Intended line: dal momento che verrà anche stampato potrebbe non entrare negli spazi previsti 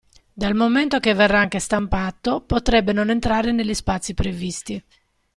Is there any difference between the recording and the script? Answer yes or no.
no